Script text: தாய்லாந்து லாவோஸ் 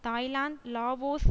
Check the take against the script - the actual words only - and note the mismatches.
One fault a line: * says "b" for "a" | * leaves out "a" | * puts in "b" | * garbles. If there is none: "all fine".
all fine